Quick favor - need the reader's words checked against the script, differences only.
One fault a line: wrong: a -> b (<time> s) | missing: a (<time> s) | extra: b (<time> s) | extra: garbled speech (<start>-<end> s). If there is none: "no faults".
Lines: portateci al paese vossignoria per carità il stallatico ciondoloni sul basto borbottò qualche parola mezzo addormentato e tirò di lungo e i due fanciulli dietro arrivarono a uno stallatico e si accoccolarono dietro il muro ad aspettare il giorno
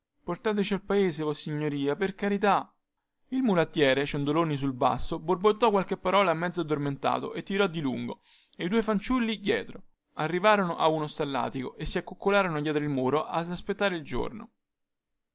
wrong: stallatico -> mulattiere (3.4 s)